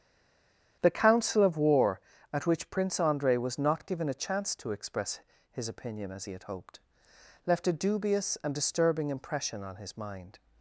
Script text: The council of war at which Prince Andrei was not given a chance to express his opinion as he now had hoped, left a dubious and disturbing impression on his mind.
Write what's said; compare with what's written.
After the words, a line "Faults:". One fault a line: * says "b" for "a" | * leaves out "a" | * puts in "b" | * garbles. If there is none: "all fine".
The council of war at which Prince Andrei was not given a chance to express his opinion as he had hoped, left a dubious and disturbing impression on his mind.
Faults:
* leaves out "now"